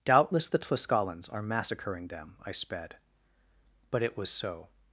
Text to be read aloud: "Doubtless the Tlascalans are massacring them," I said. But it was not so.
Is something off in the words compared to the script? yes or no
yes